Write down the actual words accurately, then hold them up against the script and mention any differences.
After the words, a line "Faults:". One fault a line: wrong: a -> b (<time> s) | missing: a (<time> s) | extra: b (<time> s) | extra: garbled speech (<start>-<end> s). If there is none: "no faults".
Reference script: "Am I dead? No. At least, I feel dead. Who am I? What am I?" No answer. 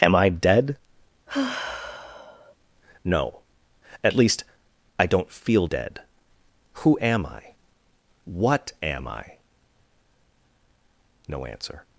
"Am I dead? No. At least, I don't feel dead. Who am I? What am I?" No answer.
Faults:
extra: don't (5.0 s)